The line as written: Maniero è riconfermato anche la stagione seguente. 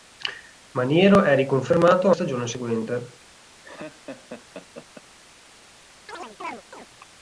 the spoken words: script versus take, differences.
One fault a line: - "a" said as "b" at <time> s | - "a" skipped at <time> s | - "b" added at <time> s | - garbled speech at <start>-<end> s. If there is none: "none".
- "anche la" skipped at 2.1 s